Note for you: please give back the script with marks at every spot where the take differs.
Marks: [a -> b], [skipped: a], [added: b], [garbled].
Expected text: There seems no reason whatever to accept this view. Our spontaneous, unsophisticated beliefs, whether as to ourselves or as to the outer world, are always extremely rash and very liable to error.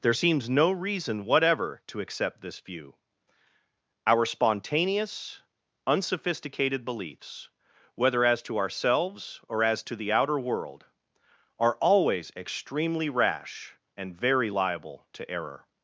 There seems no reason whatever to accept this view. Our spontaneous, unsophisticated beliefs, whether as to ourselves or as to the outer world, are always extremely rash and very liable to error.